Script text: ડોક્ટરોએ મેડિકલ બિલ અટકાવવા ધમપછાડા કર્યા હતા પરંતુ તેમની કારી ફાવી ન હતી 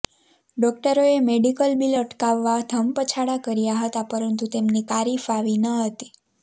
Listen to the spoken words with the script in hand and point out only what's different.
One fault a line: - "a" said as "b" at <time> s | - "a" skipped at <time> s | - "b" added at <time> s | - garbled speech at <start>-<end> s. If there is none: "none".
none